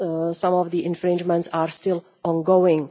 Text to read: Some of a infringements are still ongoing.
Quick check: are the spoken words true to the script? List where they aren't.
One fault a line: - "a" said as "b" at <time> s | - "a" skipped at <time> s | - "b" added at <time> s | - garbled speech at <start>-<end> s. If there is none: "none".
- "a" said as "the" at 0.7 s